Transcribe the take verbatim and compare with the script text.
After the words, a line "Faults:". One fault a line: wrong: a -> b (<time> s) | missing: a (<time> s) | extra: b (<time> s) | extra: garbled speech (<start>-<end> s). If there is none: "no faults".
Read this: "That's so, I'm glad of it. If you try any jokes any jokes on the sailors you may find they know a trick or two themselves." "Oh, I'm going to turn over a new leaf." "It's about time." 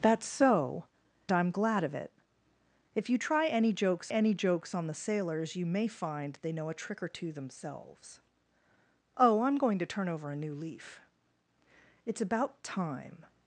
"That's so, I'm glad of it. If you try any jokes any jokes on the sailors you may find they know a trick or two themselves." "Oh, I'm going to turn over a new leaf." "It's about time."
Faults:
no faults